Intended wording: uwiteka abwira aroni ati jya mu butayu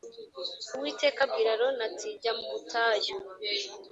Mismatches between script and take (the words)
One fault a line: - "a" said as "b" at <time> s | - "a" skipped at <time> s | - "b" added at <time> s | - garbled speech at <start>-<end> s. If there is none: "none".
none